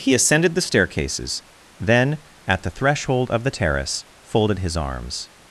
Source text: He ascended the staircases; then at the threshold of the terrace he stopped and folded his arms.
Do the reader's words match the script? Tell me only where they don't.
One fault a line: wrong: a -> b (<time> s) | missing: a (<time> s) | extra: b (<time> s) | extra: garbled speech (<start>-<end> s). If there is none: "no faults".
missing: he stopped and (4.0 s)